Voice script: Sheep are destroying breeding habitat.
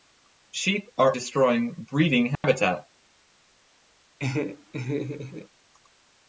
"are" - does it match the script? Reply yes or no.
yes